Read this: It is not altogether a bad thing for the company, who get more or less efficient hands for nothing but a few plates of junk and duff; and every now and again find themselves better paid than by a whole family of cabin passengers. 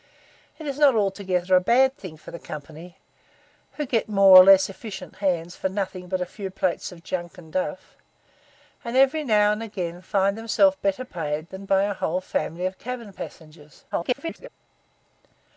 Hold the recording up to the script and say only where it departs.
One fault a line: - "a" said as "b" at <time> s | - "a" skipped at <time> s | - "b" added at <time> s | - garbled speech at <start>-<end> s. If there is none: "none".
- garbled speech at 13.9-14.5 s